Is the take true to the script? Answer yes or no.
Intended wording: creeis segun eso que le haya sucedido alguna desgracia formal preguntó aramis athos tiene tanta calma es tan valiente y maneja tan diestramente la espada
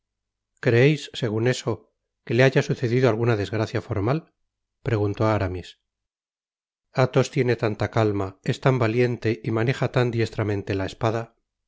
yes